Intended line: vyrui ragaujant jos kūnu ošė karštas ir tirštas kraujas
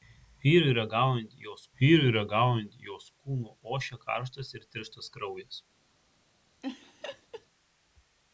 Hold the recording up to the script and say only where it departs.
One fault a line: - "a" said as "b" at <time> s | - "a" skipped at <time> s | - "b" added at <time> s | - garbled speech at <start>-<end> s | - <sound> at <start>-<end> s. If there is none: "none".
- "vyrui ragaujant jos" added at 1.8 s
- laugh at 6.6-7.5 s